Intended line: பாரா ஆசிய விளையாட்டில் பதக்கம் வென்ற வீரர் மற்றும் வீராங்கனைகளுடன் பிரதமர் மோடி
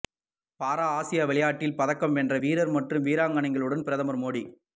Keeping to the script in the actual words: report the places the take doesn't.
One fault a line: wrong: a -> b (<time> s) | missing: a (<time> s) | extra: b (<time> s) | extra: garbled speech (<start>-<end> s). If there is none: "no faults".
no faults